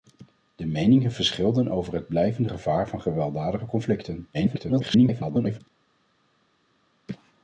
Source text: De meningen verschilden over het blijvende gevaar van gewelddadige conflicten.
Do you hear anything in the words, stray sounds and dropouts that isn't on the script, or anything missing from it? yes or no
yes